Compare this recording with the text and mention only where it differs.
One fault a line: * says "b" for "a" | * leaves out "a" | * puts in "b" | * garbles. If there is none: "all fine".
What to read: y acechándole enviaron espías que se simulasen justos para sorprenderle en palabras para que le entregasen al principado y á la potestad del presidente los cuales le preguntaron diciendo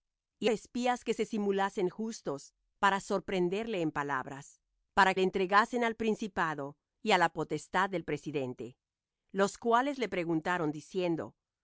* leaves out "acechándole enviaron"
* leaves out "que"